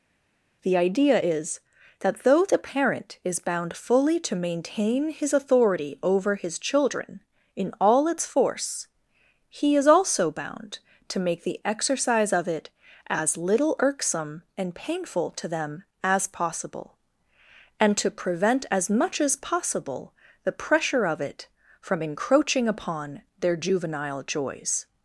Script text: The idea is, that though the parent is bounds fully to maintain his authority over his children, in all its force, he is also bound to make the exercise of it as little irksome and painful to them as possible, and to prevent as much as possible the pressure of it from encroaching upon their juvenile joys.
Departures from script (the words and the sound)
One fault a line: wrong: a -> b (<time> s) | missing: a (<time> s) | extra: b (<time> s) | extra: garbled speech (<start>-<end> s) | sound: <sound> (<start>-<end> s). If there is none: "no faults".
wrong: bounds -> bound (3.4 s)